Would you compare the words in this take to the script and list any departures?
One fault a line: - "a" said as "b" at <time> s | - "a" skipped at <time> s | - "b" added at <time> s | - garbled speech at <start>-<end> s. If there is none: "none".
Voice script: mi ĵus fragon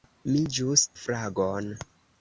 none